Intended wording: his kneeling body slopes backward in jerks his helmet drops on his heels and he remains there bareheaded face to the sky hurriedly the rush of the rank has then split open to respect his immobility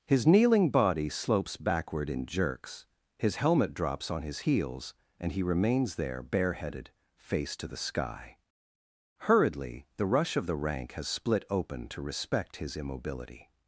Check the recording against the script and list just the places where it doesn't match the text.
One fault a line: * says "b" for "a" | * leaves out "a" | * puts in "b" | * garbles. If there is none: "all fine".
* leaves out "then"